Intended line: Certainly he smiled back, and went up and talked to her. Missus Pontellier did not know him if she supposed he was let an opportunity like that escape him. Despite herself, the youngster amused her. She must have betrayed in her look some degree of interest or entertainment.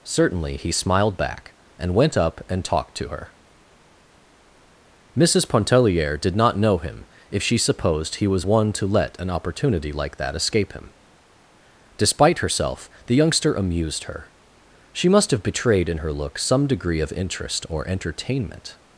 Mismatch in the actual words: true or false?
true